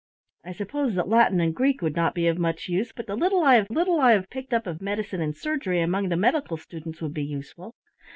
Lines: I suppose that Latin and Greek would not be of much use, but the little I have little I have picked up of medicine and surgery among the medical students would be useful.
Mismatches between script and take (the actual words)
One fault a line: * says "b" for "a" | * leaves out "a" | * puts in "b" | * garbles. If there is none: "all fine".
all fine